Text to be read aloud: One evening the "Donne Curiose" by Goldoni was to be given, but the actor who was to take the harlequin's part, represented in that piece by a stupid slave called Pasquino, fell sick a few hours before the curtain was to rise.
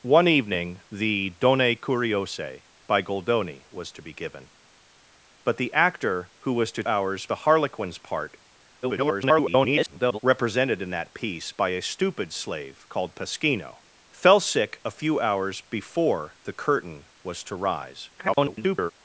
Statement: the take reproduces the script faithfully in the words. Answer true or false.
false